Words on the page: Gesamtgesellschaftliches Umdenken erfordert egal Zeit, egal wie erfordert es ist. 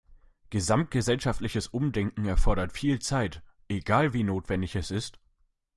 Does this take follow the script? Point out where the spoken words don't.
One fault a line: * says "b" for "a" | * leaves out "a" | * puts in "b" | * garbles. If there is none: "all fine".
* says "viel" for "egal"
* says "notwendig" for "erfordert"